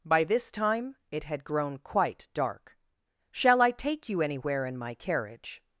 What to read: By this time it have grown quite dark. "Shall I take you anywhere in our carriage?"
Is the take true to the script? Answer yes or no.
no